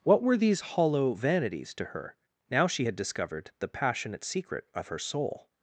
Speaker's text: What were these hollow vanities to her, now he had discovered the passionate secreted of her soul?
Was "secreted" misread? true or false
true